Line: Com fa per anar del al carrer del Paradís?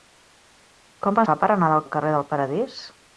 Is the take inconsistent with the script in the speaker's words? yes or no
no